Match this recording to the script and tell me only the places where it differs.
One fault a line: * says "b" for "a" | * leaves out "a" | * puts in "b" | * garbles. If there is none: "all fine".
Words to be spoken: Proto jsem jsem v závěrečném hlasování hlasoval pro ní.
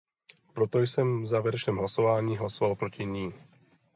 * leaves out "jsem"
* says "proti" for "pro"